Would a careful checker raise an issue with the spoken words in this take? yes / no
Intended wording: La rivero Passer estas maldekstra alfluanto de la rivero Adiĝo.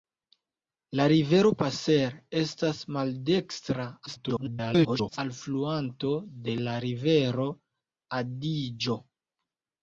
yes